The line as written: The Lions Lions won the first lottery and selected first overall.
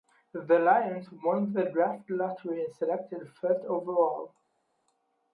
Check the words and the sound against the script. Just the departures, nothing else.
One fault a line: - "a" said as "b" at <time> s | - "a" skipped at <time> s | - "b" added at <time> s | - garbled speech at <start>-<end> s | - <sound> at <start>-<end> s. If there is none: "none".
- "Lions" skipped at 1.1 s
- "first" said as "draft" at 1.6 s